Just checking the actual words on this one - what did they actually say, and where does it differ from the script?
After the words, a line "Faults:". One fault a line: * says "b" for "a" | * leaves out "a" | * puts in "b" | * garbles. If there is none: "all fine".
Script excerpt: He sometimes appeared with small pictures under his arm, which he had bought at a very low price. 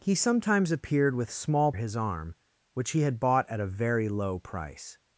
He sometimes appeared with small his arm, which he had bought at a very low price.
Faults:
* leaves out "pictures under"